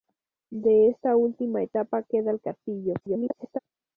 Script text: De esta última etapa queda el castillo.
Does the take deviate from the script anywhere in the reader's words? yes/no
yes